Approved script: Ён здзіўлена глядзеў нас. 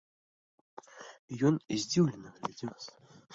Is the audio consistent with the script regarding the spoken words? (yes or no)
yes